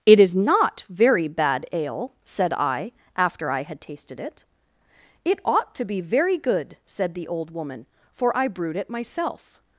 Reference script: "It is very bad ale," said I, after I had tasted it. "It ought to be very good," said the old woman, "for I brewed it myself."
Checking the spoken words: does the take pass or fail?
fail